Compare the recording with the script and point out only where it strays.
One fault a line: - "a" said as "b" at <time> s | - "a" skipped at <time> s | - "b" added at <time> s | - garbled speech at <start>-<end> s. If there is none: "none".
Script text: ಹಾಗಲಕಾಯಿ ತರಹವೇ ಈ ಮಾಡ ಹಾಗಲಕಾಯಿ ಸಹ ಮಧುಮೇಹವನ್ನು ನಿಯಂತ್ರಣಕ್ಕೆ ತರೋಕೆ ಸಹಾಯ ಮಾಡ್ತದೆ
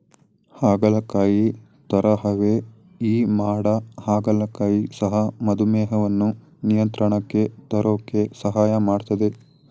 none